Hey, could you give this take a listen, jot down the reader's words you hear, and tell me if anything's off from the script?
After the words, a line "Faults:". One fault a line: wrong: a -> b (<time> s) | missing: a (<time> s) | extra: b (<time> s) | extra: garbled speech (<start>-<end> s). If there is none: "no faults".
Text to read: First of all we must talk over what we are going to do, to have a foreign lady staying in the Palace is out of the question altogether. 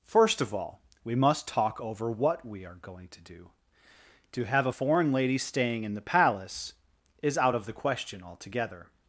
First of all we must talk over what we are going to do, to have a foreign lady staying in the Palace is out of the question altogether.
Faults:
no faults